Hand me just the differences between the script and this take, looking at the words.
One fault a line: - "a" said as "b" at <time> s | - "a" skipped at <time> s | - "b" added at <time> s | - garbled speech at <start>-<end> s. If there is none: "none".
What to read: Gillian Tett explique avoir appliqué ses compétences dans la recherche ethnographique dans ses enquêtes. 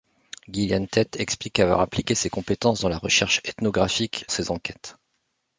- "dans" skipped at 4.2 s